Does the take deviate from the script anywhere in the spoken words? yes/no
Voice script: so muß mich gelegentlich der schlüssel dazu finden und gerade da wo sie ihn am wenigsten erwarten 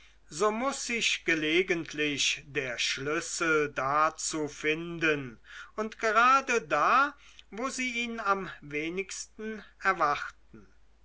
yes